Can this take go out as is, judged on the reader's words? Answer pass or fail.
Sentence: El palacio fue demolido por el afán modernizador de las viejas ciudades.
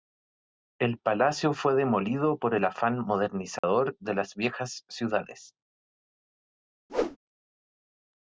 pass